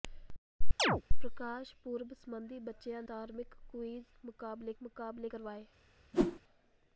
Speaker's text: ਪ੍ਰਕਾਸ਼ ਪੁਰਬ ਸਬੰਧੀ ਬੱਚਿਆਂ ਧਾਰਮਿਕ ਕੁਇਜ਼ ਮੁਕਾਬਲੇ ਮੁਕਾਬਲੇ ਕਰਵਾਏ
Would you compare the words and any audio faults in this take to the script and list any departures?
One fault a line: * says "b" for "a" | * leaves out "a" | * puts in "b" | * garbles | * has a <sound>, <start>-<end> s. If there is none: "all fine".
* has a chirp, 0.8-1.0 s
* has a whoosh, 6.1-6.4 s